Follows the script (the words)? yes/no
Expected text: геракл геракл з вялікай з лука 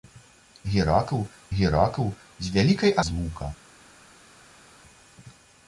yes